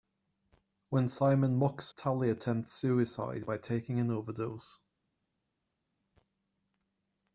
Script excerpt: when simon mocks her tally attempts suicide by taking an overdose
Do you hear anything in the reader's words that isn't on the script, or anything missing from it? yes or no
yes